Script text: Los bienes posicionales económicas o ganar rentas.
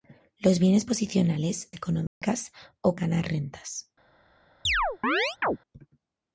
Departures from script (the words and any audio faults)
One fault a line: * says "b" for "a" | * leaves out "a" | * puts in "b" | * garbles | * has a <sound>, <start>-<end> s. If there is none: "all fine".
* has a dropout, 2.1-2.2 s
* has a chirp, 4.6-5.6 s